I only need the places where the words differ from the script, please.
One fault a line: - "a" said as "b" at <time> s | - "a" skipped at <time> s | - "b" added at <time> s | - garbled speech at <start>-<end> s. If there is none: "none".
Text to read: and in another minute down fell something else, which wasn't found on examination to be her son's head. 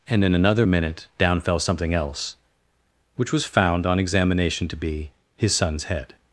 - "wasn't" said as "was" at 3.3 s
- "her" said as "his" at 5.3 s